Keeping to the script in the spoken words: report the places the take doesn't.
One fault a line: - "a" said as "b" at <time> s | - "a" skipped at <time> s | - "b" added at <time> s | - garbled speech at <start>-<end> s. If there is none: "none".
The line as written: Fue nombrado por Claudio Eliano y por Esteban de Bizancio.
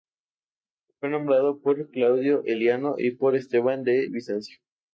none